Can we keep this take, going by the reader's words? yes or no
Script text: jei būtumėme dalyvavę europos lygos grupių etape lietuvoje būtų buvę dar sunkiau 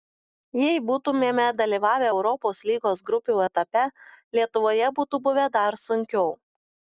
yes